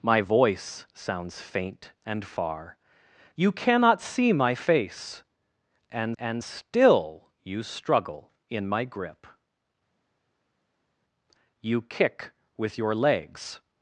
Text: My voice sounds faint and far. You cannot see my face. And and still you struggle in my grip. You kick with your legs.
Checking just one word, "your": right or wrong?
right